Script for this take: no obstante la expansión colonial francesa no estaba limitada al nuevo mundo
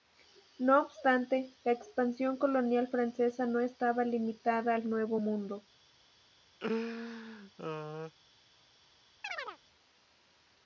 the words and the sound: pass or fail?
fail